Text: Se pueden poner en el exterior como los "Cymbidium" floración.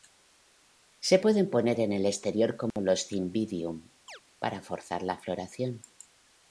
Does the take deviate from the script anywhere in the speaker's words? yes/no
yes